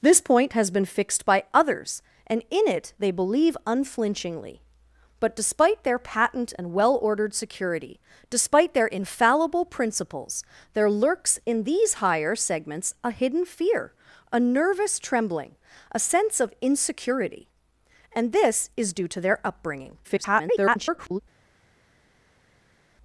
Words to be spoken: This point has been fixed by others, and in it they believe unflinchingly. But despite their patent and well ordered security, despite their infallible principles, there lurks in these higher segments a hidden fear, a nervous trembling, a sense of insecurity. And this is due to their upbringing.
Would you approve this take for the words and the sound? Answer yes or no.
no